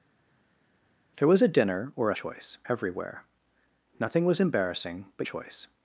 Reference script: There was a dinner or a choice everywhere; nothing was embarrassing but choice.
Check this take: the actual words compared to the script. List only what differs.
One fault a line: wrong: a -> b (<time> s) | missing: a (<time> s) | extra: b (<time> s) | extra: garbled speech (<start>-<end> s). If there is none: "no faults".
no faults